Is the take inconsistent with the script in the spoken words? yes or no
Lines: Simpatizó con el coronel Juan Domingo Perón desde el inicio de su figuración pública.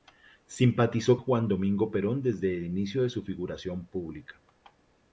yes